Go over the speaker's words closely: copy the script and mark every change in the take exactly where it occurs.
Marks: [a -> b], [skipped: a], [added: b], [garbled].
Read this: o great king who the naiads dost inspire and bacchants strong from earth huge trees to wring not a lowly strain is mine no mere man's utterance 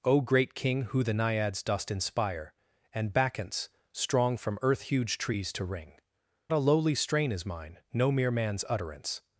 o great king who the naiads dost inspire and bacchants strong from earth huge trees to wring [skipped: not] a lowly strain is mine no mere man's utterance